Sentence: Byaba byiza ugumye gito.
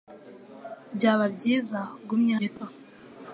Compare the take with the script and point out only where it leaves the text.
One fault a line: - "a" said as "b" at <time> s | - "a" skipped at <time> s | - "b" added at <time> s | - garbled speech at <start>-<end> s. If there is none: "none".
none